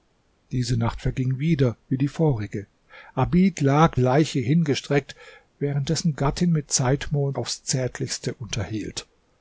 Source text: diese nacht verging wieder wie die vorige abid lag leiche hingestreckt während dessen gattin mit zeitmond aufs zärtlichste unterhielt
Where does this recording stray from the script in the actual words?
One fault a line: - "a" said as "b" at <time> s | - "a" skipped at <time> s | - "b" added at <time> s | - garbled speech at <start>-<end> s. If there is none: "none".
none